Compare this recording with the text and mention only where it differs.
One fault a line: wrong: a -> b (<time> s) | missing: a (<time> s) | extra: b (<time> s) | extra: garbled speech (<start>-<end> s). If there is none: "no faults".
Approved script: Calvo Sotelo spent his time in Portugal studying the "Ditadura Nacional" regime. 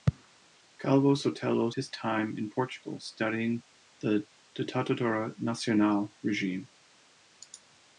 missing: spent (1.7 s)